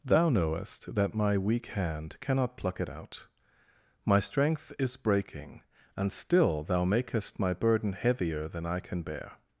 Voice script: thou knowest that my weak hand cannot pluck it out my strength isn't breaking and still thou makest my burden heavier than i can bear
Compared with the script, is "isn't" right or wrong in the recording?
wrong